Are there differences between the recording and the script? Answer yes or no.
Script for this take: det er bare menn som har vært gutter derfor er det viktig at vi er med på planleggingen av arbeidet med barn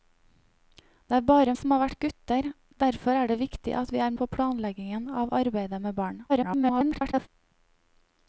yes